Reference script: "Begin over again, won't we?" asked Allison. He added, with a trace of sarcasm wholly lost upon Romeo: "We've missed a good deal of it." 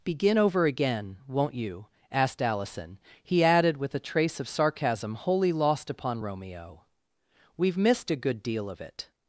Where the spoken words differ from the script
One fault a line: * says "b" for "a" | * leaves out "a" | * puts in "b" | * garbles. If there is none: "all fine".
* says "you" for "we"